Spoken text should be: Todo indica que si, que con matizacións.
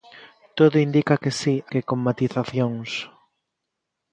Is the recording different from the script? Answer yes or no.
no